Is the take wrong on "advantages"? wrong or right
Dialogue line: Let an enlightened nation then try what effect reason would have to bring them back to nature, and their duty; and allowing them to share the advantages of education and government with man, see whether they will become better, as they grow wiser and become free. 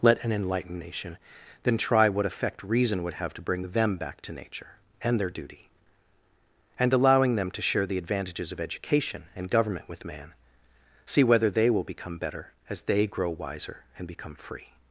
right